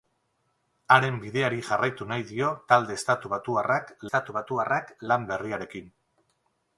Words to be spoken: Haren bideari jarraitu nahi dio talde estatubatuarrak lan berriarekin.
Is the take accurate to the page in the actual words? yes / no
no